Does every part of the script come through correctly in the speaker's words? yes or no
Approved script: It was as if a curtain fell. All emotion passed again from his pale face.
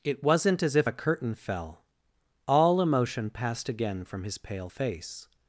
no